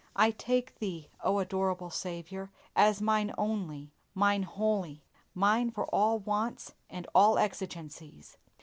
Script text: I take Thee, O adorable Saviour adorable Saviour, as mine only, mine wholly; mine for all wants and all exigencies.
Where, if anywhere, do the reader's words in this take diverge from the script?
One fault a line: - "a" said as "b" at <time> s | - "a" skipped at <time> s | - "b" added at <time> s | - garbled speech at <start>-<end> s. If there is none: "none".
- "adorable Saviour" skipped at 2.5 s